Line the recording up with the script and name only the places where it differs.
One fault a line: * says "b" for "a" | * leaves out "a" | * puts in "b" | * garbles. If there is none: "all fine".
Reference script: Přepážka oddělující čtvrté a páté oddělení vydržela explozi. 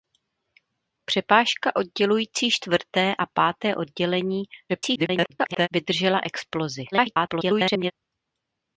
* garbles
* garbles